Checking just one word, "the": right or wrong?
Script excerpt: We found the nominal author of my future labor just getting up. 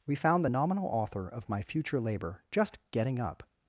right